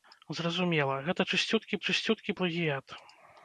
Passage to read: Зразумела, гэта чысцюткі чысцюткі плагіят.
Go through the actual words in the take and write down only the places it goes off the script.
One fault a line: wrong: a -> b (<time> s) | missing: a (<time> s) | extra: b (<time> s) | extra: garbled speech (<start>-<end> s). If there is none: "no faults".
no faults